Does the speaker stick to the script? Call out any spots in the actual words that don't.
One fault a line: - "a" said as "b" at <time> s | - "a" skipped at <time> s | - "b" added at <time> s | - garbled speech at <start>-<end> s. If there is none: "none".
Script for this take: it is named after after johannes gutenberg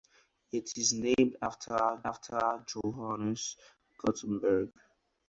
none